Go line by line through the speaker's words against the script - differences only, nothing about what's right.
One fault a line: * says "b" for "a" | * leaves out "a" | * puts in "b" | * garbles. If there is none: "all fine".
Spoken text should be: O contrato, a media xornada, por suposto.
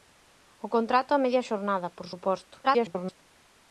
* garbles